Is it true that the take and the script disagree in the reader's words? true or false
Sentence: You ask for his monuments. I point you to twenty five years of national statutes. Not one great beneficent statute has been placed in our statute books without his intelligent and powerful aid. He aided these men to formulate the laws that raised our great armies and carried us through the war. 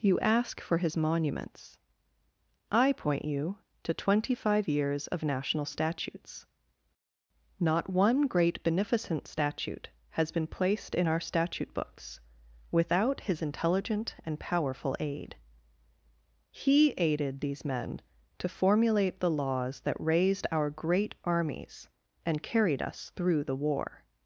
false